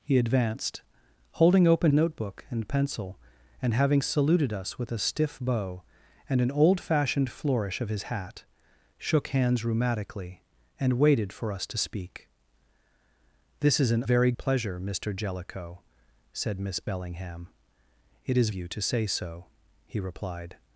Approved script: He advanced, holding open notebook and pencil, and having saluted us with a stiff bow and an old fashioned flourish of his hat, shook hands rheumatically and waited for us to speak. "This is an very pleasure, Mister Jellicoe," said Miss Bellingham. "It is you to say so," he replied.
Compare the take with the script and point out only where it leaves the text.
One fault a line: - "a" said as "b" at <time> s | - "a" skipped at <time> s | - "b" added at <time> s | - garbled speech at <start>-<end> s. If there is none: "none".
none